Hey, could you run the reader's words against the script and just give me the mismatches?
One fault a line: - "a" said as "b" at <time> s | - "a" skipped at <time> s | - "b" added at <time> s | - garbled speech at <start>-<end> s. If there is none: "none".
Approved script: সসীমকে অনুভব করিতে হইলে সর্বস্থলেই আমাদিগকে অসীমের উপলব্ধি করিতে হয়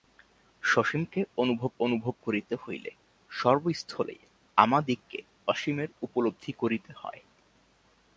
- "অনুভব" added at 1.8 s